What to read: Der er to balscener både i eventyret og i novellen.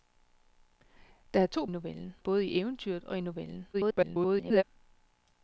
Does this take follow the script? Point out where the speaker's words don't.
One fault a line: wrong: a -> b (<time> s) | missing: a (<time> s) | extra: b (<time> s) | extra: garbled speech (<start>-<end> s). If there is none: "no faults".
wrong: balscener -> novellen (1.7 s)
extra: garbled speech (3.7-4.6 s)